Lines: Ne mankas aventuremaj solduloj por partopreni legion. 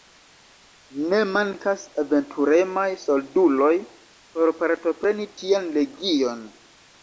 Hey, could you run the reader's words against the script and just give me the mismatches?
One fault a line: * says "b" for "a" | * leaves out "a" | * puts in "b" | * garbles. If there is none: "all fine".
* puts in "tian"